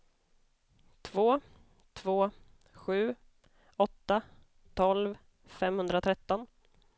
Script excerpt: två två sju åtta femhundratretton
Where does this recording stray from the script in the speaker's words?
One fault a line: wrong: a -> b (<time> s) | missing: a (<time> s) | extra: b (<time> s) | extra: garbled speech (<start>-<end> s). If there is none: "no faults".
extra: tolv (4.7 s)